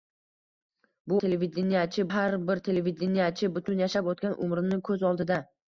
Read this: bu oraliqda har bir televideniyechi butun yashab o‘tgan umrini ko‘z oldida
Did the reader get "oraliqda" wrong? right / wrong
wrong